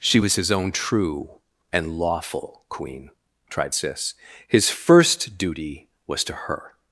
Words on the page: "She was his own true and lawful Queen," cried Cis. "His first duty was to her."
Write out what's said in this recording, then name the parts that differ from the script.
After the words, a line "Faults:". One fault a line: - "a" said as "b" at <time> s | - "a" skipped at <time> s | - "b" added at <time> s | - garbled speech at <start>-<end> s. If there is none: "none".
"She was his own true and lawful Queen," tried Cis. "His first duty was to her."
Faults:
- "cried" said as "tried" at 3.5 s